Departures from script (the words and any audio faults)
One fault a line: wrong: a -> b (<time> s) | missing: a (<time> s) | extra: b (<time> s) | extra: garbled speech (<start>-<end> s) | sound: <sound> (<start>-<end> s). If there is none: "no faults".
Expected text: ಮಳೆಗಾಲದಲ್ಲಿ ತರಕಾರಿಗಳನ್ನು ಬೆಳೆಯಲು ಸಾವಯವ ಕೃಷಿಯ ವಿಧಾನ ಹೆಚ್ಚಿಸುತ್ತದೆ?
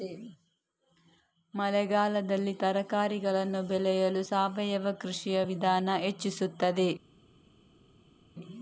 no faults